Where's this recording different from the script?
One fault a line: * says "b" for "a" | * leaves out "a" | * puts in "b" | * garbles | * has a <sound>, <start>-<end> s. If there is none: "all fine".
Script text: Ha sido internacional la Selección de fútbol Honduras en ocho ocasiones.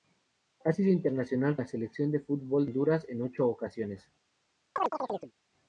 * has a chirp, 4.8-5.3 s